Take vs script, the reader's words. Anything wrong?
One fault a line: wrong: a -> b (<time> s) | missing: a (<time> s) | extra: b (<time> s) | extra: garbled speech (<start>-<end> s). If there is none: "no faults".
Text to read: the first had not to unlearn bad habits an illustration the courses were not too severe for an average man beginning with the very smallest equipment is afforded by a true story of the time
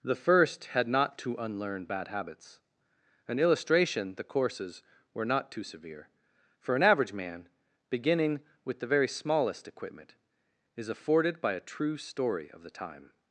no faults